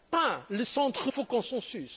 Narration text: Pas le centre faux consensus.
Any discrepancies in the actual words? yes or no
no